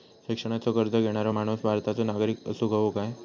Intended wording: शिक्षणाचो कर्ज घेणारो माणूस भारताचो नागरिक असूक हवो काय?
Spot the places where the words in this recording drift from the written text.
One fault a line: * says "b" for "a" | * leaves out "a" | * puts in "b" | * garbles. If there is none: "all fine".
all fine